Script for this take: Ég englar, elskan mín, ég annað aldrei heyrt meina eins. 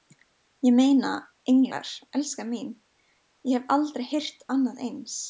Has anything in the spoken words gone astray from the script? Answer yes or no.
yes